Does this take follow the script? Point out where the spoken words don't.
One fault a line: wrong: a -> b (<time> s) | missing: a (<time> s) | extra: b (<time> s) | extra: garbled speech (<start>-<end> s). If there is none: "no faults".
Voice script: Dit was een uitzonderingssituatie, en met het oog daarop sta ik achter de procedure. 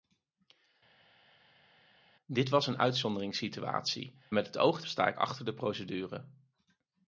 missing: en (4.2 s)
missing: daarop (4.8 s)